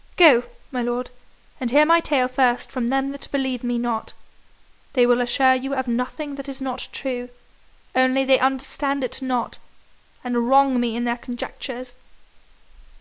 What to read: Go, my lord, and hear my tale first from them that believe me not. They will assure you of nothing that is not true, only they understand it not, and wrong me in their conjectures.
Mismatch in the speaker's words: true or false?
false